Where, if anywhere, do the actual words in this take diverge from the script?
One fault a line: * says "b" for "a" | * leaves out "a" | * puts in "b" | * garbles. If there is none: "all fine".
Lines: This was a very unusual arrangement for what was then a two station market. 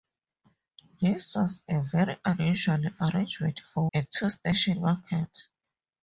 * leaves out "what was then"